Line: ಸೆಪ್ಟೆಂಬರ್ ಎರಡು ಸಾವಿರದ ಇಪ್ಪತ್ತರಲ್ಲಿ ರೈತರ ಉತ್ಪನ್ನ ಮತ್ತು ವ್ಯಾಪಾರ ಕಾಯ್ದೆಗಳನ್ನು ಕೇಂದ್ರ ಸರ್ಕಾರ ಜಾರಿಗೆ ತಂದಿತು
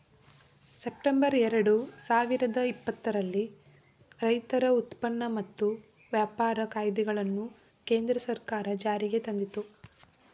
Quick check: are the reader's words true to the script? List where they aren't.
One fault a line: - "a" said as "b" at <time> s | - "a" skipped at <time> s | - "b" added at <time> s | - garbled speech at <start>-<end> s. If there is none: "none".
none